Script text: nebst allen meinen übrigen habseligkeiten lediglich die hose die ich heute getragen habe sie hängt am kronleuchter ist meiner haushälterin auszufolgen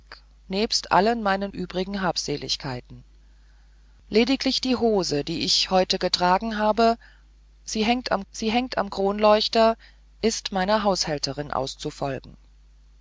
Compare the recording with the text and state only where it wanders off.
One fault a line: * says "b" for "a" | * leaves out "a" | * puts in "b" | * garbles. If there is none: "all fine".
* puts in "sie hängt am"